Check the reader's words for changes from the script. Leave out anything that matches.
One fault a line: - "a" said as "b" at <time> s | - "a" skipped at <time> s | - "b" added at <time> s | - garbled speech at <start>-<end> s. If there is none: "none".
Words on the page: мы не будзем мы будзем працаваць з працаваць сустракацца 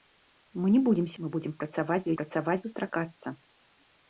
none